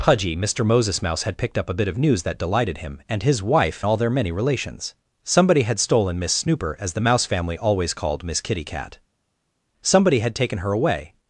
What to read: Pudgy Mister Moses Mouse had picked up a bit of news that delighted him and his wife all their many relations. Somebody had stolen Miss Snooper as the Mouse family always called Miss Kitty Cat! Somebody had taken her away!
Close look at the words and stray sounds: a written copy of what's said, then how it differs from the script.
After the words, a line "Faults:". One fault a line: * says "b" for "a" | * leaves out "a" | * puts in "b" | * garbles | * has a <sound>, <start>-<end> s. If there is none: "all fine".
Pudgy Mister Moses Mouse had picked up a bit of news that delighted him and his wife all their many relations. Somebody had stolen Miss Snooper as the Mouse family always called Miss Kitty Cat! Somebody had taken her away!
Faults:
all fine